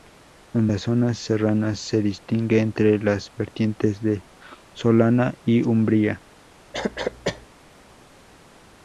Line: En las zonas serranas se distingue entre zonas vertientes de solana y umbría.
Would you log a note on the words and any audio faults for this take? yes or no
yes